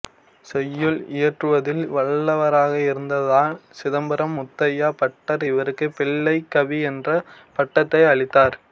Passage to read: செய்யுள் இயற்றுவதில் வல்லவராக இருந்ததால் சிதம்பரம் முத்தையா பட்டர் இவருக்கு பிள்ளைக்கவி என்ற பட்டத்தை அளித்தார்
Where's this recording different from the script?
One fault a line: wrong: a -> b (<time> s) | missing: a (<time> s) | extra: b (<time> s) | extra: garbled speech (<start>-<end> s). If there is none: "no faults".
no faults